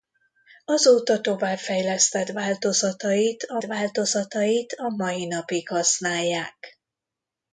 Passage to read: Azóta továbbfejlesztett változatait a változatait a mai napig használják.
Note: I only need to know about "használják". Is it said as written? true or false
true